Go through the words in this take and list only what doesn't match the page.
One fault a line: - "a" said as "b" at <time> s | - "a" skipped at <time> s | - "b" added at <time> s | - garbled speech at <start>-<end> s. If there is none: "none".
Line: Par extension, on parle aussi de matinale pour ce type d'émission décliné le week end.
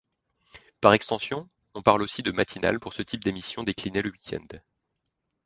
none